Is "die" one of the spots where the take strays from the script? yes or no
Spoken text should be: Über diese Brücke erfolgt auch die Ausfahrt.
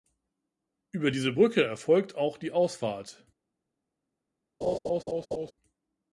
no